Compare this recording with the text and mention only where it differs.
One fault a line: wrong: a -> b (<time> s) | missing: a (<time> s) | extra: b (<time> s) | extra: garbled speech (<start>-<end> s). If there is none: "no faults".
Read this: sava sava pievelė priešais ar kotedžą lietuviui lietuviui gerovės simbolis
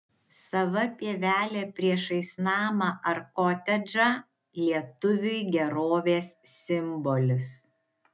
missing: sava (0.8 s)
extra: namą (2.5 s)
missing: lietuviui (5.4 s)